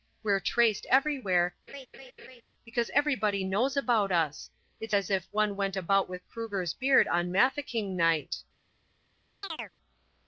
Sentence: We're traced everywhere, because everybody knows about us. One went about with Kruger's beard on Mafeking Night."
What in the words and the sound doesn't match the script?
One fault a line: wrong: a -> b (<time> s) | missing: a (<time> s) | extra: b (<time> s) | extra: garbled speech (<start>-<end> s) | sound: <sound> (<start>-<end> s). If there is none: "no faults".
sound: laugh (1.7-2.4 s)
extra: It's as if (4.8 s)
sound: chirp (9.4-9.7 s)